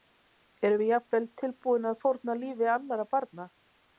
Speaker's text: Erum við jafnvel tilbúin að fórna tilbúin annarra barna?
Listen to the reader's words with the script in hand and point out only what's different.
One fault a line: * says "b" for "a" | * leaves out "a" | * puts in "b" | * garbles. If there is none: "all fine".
* says "lífi" for "tilbúin"